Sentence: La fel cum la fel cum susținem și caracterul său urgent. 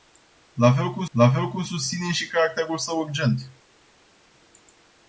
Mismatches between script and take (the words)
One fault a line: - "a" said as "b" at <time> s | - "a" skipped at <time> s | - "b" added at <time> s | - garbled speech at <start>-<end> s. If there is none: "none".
none